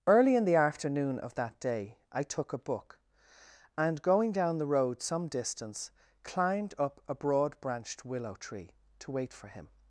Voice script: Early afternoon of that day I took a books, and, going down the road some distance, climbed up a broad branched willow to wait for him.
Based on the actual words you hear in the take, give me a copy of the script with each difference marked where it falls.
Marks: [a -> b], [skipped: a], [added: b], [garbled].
Early [added: in the] afternoon of that day I took a [books, -> book] and, going down the road some distance, climbed up a broad branched willow [added: tree] to wait for him.